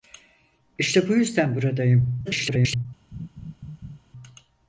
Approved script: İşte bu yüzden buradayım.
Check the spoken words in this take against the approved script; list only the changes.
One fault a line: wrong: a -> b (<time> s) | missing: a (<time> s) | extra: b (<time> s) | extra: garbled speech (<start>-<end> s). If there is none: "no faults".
extra: garbled speech (2.3-2.9 s)